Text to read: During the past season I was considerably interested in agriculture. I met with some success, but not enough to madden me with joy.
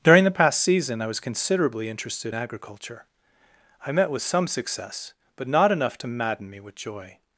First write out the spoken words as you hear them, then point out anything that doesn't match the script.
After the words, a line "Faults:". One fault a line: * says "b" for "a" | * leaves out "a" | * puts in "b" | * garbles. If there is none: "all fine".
During the past season I was considerably interested agriculture. I met with some success, but not enough to madden me with joy.
Faults:
* leaves out "in"